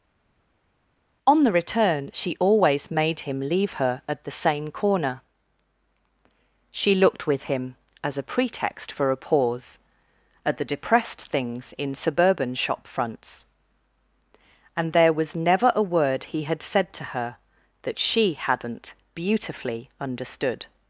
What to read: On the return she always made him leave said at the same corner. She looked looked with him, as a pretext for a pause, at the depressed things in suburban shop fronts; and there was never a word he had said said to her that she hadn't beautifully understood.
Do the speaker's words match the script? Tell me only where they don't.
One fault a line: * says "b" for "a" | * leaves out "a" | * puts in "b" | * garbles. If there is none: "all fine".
* says "her" for "said"
* leaves out "looked"
* leaves out "said"